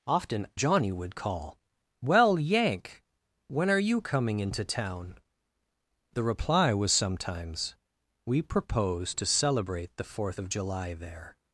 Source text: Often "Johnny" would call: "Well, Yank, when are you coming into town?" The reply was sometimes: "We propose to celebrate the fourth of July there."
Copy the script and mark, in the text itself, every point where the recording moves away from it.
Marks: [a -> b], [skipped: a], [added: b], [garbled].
Often "Johnny" would call: "Well, Yank, when are you coming into town?" The reply was sometimes: "We propose to celebrate the fourth of July there."